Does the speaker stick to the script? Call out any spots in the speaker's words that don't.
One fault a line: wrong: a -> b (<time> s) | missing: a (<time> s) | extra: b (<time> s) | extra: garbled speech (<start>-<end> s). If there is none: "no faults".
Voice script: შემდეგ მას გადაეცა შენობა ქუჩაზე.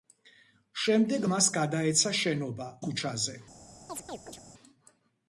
no faults